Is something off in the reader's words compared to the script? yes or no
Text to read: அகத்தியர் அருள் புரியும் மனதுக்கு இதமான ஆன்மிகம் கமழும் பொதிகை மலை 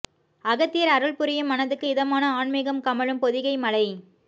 no